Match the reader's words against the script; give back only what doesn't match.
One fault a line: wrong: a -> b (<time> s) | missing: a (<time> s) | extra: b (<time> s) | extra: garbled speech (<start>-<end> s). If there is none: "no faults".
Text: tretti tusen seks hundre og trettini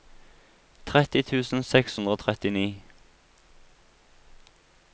no faults